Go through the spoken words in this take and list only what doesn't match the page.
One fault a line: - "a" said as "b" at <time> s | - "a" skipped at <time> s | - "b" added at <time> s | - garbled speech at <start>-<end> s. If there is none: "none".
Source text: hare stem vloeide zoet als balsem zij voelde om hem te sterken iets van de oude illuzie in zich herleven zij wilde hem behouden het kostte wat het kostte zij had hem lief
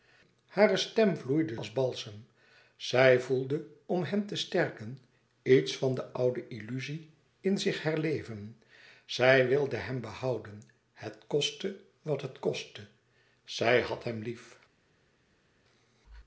- "zoet" skipped at 1.6 s